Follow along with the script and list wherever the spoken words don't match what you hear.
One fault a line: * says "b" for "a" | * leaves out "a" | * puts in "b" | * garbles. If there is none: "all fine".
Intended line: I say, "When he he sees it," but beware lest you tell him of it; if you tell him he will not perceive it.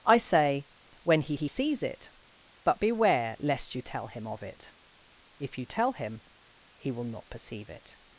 all fine